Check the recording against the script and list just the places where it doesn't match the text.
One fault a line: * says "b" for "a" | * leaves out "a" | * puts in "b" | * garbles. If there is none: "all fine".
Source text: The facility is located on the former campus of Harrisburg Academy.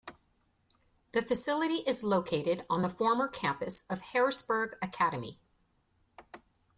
all fine